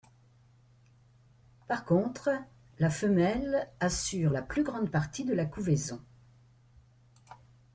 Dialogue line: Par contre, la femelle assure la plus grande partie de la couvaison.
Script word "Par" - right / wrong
right